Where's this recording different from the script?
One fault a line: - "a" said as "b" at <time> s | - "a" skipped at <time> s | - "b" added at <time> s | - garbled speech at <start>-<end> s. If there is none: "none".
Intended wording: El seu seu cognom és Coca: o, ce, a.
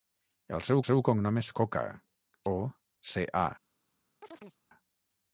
none